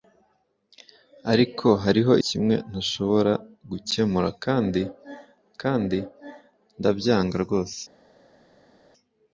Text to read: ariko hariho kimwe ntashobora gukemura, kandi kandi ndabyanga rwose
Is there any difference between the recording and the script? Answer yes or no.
no